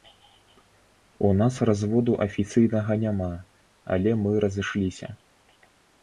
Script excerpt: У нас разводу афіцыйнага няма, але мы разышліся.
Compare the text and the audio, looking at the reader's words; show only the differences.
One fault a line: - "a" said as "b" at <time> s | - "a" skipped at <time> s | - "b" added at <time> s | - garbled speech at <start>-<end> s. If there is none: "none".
none